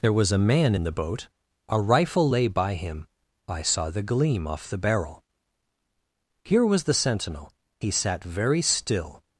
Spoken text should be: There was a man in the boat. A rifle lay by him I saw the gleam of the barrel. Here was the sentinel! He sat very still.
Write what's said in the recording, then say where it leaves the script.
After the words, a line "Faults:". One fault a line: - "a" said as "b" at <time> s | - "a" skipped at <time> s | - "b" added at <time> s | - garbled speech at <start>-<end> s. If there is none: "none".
There was a man in the boat. A rifle lay by him I saw the gleam off the barrel. Here was the sentinel! He sat very still.
Faults:
- "of" said as "off" at 4.5 s